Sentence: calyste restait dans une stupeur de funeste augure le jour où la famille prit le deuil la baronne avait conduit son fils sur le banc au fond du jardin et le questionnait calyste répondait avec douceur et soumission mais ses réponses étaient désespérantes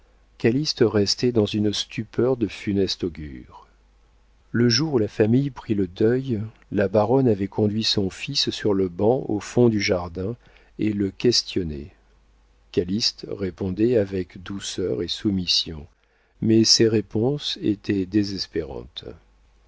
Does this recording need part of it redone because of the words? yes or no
no